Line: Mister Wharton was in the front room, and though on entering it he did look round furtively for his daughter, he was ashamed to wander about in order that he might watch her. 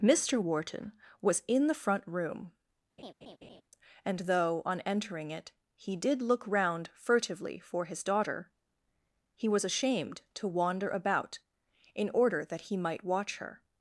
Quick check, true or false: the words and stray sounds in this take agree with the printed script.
false